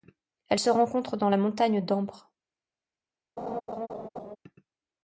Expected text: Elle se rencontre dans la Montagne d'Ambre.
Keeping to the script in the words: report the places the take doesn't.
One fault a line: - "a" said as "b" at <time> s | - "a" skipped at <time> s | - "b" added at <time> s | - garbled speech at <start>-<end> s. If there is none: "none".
none